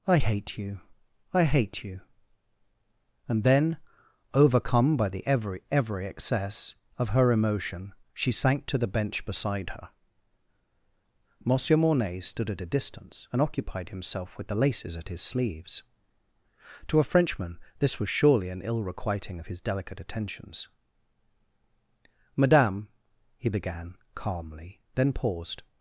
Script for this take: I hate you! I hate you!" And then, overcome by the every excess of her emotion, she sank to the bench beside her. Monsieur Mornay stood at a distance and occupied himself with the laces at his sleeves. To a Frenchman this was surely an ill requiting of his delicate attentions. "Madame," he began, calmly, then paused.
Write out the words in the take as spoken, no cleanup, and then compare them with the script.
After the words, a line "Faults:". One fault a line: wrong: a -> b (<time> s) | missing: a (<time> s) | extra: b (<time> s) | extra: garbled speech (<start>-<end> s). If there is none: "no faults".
I hate you! I hate you!" And then, overcome by the every every excess of her emotion, she sank to the bench beside her. Monsieur Mornay stood at a distance and occupied himself with the laces at his sleeves. To a Frenchman this was surely an ill requiting of his delicate attentions. "Madame," he began, calmly, then paused.
Faults:
extra: every (5.7 s)